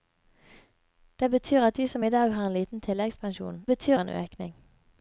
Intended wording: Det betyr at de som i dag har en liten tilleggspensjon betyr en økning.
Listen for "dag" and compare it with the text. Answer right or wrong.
right